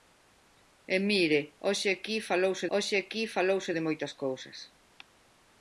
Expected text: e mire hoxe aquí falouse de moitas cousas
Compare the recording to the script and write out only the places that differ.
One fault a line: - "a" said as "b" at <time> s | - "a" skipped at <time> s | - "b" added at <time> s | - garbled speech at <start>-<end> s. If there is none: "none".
- "hoxe aquí falouse" added at 2.7 s